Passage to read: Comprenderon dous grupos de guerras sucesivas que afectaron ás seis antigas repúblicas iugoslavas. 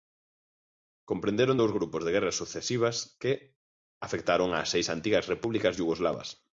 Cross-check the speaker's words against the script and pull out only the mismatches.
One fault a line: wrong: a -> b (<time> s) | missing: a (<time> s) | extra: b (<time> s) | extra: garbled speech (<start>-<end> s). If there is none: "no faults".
no faults